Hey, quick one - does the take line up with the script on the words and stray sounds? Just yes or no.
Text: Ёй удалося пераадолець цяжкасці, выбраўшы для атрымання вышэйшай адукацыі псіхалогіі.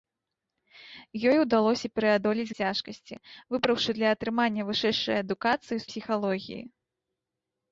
yes